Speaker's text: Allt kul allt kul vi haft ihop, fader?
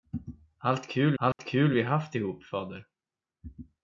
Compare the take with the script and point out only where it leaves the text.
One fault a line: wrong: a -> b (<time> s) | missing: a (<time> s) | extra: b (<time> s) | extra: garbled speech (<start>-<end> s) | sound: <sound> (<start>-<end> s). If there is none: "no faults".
sound: dropout (1.3-1.4 s)